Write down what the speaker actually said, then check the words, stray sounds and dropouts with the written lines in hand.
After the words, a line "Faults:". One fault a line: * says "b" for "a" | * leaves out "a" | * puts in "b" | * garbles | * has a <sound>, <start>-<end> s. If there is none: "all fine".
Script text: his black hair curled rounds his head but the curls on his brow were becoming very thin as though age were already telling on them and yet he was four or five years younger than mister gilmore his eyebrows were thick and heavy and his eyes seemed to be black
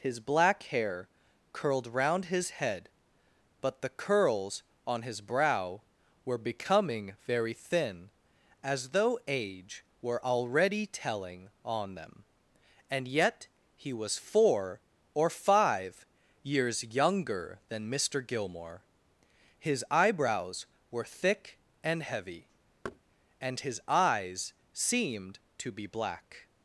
his black hair curled round his head but the curls on his brow were becoming very thin as though age were already telling on them and yet he was four or five years younger than mister gilmore his eyebrows were thick and heavy and his eyes seemed to be black
Faults:
* says "round" for "rounds"
* has a thud, 22.8-23.0 s